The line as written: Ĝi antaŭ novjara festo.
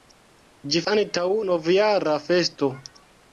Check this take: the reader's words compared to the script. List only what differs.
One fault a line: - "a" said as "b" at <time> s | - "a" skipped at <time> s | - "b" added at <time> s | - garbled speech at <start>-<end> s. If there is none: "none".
none